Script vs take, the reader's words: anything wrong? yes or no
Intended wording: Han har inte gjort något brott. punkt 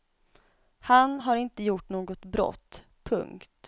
no